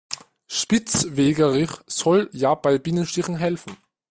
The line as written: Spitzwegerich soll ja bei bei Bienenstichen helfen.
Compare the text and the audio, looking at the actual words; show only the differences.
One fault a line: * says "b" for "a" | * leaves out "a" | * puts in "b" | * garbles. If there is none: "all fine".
* leaves out "bei"